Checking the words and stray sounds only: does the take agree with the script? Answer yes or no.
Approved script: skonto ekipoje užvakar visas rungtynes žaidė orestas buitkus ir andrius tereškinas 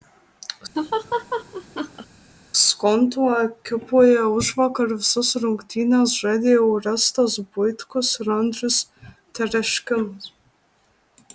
no